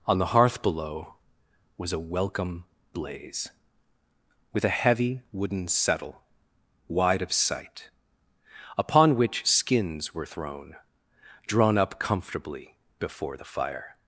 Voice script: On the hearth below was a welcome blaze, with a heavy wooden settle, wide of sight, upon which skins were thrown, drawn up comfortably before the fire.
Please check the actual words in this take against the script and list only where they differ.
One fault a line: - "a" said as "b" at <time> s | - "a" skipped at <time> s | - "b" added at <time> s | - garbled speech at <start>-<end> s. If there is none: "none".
none